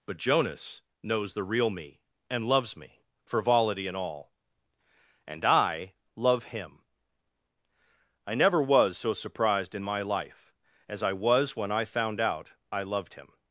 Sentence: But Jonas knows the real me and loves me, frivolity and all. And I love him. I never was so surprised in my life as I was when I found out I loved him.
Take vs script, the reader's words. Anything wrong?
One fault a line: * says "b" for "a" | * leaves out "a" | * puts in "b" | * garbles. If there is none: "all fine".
all fine